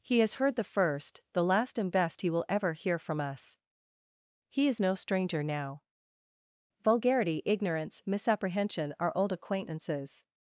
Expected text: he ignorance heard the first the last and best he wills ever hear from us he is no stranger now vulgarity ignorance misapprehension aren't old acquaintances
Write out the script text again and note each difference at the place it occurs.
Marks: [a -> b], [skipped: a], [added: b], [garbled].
he [ignorance -> has] heard the first the last and best he [wills -> will] ever hear from us he is no stranger now vulgarity ignorance misapprehension [aren't -> are] old acquaintances